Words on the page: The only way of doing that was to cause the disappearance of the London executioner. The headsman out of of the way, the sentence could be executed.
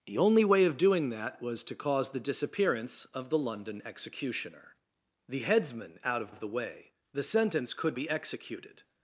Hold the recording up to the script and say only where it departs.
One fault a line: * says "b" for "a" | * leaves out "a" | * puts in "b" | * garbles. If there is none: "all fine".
all fine